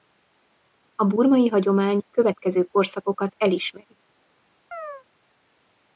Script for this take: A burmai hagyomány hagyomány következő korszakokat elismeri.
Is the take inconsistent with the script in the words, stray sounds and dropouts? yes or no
yes